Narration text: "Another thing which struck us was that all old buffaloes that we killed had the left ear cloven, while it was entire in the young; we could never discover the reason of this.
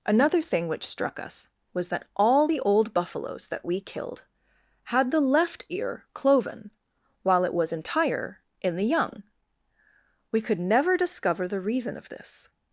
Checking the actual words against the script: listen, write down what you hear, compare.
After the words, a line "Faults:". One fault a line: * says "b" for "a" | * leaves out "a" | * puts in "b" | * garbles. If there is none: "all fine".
"Another thing which struck us was that all the old buffaloes that we killed had the left ear cloven, while it was entire in the young; we could never discover the reason of this.
Faults:
* puts in "the"